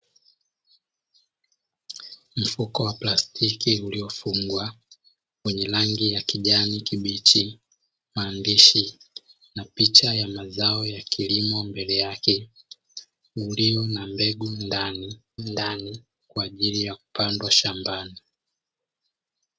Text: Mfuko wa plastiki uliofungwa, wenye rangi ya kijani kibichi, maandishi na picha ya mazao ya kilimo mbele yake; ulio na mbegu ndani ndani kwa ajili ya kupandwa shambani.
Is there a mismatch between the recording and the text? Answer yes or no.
no